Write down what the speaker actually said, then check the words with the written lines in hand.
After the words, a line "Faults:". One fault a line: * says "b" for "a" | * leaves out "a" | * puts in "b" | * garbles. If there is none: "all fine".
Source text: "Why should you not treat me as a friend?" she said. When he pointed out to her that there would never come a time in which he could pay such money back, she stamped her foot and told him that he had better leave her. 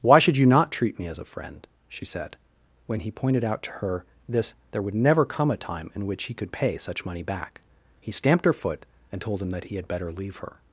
"Why should you not treat me as a friend?" she said. When he pointed out to her this there would never come a time in which he could pay such money back, he stamped her foot and told him that he had better leave her.
Faults:
* says "this" for "that"
* says "he" for "she"